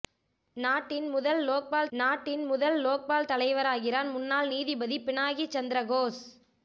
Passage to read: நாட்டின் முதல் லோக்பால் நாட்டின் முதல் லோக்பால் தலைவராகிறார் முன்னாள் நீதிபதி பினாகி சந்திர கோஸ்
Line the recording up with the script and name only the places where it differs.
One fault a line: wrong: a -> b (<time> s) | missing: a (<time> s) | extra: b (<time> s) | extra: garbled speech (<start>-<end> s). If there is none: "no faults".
no faults